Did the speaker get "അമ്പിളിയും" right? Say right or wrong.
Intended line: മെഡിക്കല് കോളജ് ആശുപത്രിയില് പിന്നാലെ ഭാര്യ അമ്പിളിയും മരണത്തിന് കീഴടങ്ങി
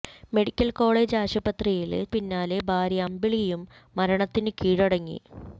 right